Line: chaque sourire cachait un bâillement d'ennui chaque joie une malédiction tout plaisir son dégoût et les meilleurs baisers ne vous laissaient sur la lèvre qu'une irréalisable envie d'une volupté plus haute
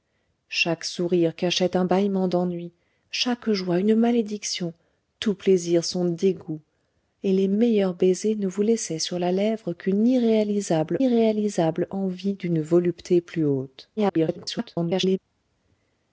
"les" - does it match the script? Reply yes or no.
yes